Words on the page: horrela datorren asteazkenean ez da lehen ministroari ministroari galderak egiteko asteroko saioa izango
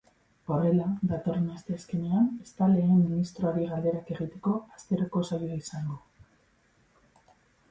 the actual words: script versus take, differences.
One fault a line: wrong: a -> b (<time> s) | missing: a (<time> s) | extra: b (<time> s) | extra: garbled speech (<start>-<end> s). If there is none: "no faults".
missing: ministroari (3.7 s)